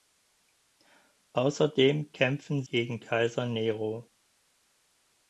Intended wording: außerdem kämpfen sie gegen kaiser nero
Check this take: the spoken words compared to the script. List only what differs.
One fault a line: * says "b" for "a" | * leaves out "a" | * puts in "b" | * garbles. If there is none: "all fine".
* leaves out "sie"